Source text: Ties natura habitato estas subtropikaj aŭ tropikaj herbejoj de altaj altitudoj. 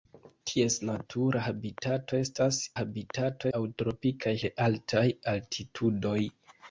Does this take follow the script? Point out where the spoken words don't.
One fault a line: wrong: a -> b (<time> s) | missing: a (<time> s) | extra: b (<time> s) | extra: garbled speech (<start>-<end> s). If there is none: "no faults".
wrong: subtropikaj -> habitato (2.8 s)
missing: herbejoj (4.3 s)